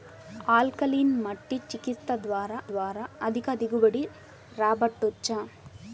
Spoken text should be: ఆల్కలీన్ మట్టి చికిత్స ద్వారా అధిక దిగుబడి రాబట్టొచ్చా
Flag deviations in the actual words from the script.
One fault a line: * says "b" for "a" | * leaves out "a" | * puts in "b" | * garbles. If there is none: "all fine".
* puts in "ద్వారా"